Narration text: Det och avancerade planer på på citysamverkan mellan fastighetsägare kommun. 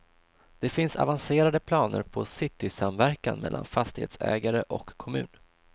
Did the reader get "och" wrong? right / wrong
wrong